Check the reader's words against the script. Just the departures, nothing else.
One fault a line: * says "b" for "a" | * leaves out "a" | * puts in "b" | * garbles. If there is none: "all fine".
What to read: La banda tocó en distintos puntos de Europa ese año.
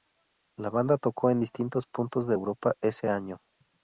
all fine